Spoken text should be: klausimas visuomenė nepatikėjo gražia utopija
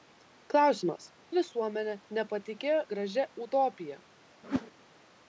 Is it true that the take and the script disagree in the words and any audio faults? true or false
true